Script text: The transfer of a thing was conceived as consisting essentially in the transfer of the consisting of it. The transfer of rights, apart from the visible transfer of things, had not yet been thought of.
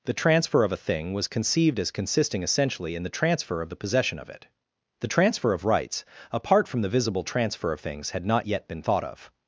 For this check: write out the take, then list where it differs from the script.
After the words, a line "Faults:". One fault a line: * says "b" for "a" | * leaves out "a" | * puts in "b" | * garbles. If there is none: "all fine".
The transfer of a thing was conceived as consisting essentially in the transfer of the possession of it. The transfer of rights, apart from the visible transfer of things, had not yet been thought of.
Faults:
* says "possession" for "consisting"